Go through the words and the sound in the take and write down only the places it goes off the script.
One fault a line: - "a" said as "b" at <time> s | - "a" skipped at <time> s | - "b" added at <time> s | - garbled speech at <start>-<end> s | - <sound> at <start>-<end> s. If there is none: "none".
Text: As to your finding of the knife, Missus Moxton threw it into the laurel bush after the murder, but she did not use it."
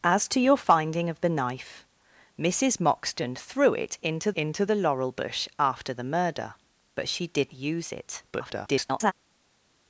- "into" added at 4.3 s
- "not" skipped at 7.5 s
- garbled speech at 8.3-9.1 s